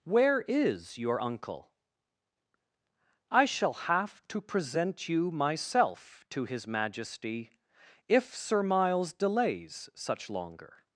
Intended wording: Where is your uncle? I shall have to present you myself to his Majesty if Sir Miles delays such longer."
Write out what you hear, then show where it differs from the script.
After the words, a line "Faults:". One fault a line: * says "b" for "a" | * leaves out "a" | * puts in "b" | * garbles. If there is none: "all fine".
Where is your uncle? I shall have to present you myself to his Majesty if Sir Miles delays such longer."
Faults:
all fine